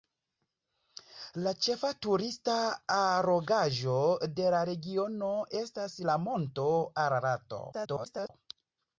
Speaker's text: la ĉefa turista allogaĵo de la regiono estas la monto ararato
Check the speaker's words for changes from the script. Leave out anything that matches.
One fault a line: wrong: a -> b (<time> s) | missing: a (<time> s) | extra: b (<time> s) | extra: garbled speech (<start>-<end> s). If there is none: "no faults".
extra: garbled speech (7.7-8.3 s)